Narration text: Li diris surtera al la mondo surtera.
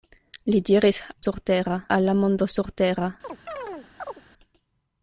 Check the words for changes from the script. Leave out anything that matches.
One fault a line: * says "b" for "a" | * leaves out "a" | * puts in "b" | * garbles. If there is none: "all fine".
all fine